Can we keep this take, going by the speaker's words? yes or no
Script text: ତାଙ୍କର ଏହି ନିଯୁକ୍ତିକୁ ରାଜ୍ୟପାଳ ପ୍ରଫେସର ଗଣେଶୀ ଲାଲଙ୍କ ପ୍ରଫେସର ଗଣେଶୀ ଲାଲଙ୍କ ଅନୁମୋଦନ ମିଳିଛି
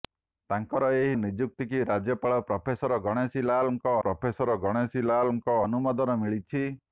yes